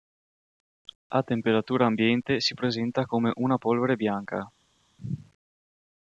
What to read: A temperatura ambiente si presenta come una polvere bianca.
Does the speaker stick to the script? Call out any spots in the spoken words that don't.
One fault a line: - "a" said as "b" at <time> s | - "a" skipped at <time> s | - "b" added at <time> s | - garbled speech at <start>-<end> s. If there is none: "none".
none